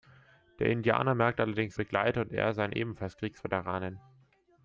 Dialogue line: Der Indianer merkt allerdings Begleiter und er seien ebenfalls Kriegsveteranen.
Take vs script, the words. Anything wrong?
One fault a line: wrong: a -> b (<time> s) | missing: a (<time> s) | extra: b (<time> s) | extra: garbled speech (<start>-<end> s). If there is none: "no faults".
no faults